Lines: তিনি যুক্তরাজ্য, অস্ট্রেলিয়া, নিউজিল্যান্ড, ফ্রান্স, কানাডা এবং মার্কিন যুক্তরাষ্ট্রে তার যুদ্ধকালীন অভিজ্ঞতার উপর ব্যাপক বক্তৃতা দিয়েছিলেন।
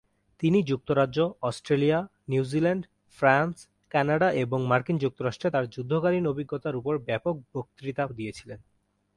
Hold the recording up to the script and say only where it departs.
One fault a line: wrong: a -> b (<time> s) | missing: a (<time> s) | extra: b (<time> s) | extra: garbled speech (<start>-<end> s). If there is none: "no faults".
no faults